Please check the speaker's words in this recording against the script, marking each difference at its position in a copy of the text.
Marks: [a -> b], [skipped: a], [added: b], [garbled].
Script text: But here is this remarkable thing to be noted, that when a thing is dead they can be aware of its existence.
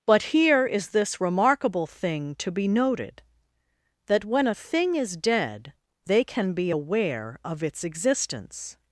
But here is this remarkable thing to be noted, that when a thing is dead they can be aware of its existence.